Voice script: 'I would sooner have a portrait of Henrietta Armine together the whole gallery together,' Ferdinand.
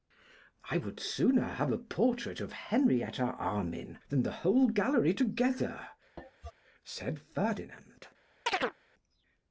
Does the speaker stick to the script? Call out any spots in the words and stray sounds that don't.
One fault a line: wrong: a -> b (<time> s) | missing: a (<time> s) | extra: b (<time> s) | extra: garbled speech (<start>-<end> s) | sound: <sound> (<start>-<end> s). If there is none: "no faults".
wrong: together -> than (4.1 s)
sound: cough (6.2-6.5 s)
extra: said (6.8 s)
sound: chirp (8.5-8.8 s)